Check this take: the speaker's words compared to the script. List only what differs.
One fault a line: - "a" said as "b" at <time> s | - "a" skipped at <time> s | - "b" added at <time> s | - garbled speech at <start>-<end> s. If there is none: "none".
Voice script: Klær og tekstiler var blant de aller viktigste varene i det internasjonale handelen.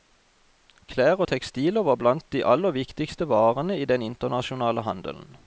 - "det" said as "den" at 3.9 s